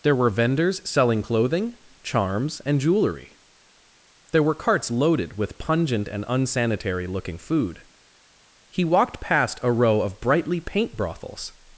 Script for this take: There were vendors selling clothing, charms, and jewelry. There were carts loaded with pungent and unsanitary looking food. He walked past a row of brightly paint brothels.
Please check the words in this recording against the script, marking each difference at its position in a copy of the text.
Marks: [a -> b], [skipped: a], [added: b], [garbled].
There were vendors selling clothing, charms, and jewelry. There were carts loaded with pungent and unsanitary looking food. He walked past a row of brightly paint brothels.